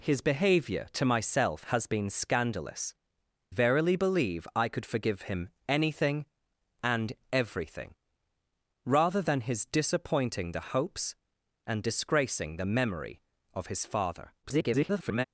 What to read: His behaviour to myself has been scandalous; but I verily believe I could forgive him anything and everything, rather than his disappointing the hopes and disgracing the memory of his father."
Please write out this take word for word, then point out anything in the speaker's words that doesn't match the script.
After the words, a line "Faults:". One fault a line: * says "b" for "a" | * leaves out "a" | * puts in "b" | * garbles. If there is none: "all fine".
His behaviour to myself has been scandalous; verily believe I could forgive him anything and everything, rather than his disappointing the hopes and disgracing the memory of his father." [garbled]
Faults:
* leaves out "but I"
* garbles